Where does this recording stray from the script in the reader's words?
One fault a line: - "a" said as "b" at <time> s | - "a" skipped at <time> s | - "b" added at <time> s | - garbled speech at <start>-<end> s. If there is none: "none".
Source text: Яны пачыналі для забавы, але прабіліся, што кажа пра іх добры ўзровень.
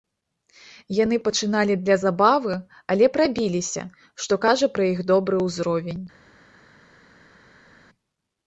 none